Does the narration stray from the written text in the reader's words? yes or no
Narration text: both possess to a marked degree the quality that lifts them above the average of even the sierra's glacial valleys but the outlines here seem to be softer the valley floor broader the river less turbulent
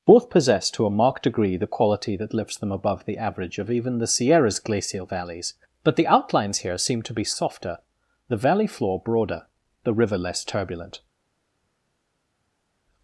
no